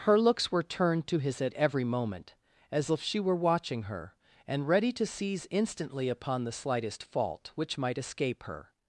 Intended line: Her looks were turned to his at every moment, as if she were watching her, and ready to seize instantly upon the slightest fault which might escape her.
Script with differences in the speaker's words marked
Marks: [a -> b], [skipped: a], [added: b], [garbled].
Her looks were turned to his at every moment, as if she were watching her, and ready to seize instantly upon the slightest fault which might escape her.